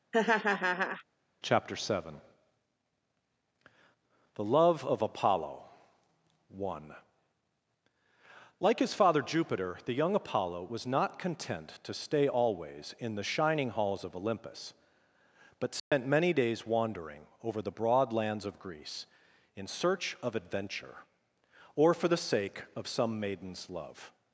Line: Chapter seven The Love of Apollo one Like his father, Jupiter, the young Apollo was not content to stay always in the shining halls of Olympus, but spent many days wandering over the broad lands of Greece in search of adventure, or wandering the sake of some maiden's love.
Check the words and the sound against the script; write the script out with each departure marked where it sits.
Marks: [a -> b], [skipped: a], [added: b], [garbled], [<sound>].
[laugh] Chapter seven The Love of Apollo one Like his father, Jupiter, the young Apollo was not content to stay always in the shining halls of Olympus, but spent [dropout] many days wandering over the broad lands of Greece in search of adventure, or [wandering -> for] the sake of some maiden's love.